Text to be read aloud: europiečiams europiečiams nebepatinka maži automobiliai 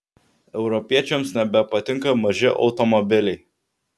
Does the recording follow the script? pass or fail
fail